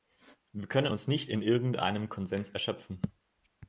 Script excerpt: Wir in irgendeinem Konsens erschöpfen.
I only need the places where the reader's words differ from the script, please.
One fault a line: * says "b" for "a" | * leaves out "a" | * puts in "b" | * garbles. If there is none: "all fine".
* puts in "können uns nicht"